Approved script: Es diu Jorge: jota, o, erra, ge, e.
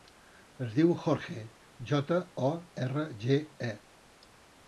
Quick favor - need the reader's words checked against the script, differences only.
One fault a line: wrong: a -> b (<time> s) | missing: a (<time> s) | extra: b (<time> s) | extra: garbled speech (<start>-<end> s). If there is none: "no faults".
no faults